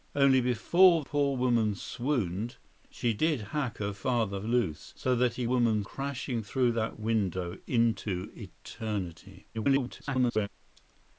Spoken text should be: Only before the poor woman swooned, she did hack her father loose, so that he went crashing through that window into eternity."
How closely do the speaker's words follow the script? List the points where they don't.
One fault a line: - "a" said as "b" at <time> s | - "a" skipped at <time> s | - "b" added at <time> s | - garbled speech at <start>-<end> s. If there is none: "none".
- "the" skipped at 1.0 s
- "went" said as "woman" at 5.5 s
- garbled speech at 9.5-10.5 s